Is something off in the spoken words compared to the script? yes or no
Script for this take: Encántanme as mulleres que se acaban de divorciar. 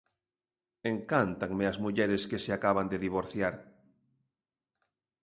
no